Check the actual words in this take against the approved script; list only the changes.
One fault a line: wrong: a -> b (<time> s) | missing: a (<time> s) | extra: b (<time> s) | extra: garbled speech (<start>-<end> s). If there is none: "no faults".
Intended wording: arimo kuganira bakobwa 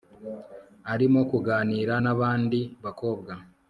extra: nabandi (2.0 s)